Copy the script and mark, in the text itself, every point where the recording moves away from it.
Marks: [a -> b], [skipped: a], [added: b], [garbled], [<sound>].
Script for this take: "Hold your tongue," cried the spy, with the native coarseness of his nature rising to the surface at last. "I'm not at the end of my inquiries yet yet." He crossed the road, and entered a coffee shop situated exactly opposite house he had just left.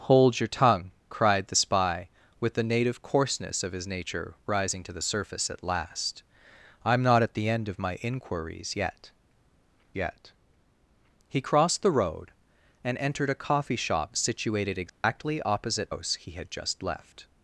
"Hold your tongue," cried the spy, with the native coarseness of his nature rising to the surface at last. "I'm not at the end of my inquiries yet yet." He crossed the road, and entered a coffee shop situated exactly [dropout] opposite house he had just left.